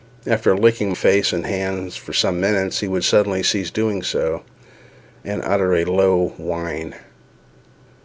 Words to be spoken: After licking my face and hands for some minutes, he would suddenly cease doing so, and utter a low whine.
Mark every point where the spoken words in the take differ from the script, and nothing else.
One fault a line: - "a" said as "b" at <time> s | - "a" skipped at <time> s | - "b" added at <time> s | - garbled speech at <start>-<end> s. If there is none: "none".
- "my" skipped at 0.9 s